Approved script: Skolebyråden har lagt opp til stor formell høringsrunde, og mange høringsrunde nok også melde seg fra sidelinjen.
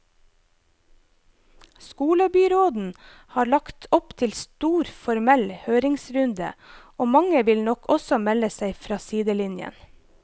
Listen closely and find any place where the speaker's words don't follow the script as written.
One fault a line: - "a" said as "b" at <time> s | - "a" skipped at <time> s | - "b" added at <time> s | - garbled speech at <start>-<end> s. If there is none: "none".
- "høringsrunde" said as "vil" at 7.5 s